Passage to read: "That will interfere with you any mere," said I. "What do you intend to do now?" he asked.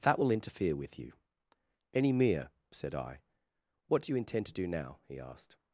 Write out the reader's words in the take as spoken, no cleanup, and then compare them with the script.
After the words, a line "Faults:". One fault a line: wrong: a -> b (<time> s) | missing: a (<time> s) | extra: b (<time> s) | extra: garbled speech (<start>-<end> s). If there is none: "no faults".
"That will interfere with you any mere," said I. "What do you intend to do now?" he asked.
Faults:
no faults